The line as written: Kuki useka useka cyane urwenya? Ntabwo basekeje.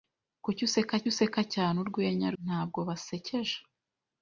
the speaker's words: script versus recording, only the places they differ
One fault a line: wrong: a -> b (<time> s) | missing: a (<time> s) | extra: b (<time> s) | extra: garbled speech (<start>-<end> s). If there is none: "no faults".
no faults